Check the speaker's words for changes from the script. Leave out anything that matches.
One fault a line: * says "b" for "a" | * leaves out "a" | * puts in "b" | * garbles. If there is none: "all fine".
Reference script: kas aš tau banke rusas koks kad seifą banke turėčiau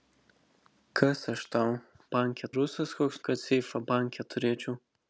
all fine